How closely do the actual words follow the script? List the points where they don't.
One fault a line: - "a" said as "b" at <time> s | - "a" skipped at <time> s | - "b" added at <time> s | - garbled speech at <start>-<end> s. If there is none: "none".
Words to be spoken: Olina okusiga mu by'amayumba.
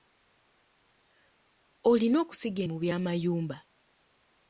none